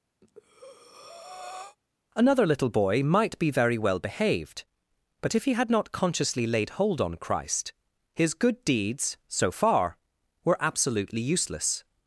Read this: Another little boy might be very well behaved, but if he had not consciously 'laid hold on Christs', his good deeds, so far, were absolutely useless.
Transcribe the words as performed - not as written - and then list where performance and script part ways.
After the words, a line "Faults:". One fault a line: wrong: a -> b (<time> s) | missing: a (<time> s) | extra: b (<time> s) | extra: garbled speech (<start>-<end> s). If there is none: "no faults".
Another little boy might be very well behaved, but if he had not consciously 'laid hold on Christ', his good deeds, so far, were absolutely useless.
Faults:
wrong: Christs -> Christ (7.2 s)